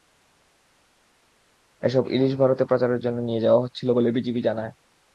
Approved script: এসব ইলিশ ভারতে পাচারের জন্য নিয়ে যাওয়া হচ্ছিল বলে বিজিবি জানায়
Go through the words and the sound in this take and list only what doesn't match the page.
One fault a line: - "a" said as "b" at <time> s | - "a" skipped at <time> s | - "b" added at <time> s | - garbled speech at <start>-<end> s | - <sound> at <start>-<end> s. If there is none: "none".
none